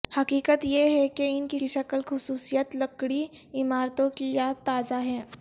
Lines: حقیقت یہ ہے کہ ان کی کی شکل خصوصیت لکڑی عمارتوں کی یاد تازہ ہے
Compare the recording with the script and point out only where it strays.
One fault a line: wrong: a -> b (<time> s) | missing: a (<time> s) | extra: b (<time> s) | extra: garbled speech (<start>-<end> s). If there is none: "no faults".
no faults